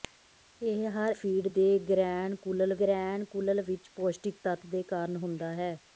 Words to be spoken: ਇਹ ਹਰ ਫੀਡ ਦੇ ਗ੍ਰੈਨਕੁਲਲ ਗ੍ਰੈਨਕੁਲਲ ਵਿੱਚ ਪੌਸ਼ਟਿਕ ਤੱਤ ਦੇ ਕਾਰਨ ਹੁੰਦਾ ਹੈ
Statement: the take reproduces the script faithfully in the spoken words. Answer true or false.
true